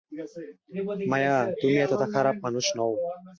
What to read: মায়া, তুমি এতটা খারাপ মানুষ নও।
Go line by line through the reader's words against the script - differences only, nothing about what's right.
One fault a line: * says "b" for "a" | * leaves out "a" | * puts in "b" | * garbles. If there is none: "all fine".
all fine